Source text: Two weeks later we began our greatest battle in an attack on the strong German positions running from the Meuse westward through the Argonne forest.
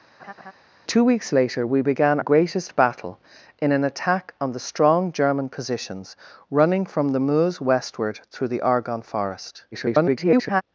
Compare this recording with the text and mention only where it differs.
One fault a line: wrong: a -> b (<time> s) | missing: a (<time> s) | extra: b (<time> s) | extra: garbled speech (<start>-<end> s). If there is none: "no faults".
missing: our (2.2 s)
extra: garbled speech (9.7-10.6 s)